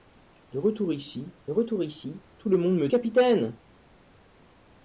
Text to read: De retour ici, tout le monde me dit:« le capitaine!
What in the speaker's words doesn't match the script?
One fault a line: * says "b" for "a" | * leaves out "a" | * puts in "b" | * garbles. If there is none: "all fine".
* puts in "retour ici"
* leaves out "dit le"